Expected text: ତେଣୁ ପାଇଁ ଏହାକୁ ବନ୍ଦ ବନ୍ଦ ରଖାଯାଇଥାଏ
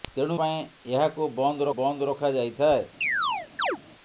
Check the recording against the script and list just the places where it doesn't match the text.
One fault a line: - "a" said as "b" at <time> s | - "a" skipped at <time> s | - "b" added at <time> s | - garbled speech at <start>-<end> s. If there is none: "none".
none